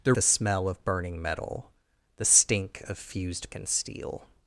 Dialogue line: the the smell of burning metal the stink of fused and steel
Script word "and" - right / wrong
right